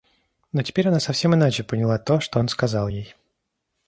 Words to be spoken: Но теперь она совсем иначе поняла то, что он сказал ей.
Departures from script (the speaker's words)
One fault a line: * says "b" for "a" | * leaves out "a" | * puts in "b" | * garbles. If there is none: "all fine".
all fine